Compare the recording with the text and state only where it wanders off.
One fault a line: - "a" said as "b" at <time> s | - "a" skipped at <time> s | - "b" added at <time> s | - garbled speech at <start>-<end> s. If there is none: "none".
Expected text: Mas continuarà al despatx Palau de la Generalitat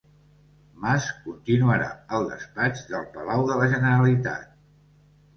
- "del" added at 2.9 s